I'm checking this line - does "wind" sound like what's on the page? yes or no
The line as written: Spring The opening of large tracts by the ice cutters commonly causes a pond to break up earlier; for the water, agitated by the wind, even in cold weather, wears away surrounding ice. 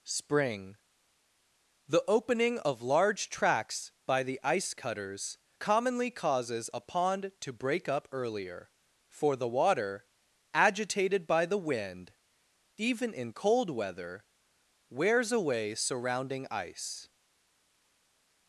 yes